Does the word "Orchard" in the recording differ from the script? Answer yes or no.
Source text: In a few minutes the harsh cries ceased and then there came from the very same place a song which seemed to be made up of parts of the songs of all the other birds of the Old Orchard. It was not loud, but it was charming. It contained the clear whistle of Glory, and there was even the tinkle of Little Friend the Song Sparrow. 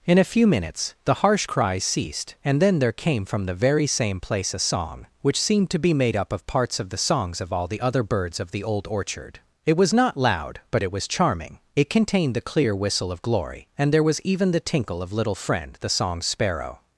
no